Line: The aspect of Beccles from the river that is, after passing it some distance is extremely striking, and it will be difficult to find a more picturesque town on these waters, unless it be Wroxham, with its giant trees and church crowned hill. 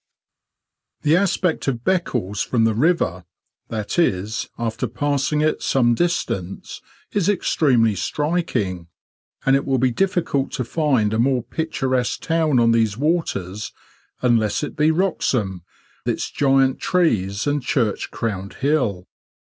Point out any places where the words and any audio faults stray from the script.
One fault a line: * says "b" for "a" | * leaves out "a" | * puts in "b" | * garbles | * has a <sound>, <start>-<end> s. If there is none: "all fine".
* leaves out "with"